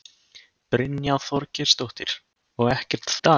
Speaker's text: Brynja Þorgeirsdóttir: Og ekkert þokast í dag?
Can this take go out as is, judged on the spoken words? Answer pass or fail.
fail